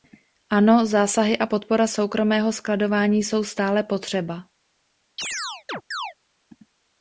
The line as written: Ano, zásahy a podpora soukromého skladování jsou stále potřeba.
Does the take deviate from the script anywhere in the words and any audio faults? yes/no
yes